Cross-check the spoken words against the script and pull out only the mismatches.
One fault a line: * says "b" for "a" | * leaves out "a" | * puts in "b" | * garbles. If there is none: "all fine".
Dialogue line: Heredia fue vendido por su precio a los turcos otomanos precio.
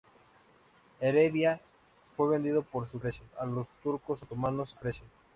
all fine